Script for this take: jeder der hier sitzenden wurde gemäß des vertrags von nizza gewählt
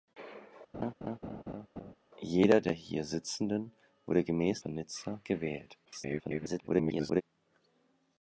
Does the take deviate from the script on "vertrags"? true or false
true